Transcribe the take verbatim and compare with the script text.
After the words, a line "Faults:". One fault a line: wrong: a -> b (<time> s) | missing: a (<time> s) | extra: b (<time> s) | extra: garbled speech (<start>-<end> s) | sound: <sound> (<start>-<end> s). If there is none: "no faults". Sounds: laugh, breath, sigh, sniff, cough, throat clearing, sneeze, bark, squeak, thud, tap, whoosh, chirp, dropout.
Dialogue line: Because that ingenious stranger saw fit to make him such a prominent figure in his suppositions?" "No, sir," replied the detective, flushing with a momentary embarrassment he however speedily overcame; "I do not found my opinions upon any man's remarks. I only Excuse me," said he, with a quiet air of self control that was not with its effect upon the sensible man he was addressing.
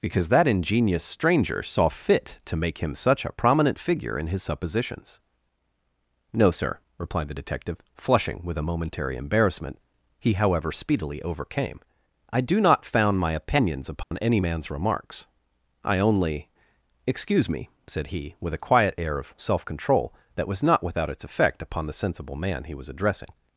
Because that ingenious stranger saw fit to make him such a prominent figure in his suppositions?" "No, sir," replied the detective, flushing with a momentary embarrassment he however speedily overcame; "I do not found my opinions upon any man's remarks. I only Excuse me," said he, with a quiet air of self control that was not without its effect upon the sensible man he was addressing.
Faults:
sound: dropout (14.0-14.1 s)
wrong: with -> without (20.8 s)